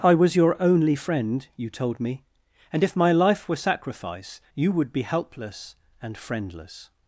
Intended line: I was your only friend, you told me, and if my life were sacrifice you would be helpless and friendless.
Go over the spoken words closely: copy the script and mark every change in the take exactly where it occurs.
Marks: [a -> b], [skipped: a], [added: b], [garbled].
I was your only friend, you told me, and if my life were sacrifice you would be helpless and friendless.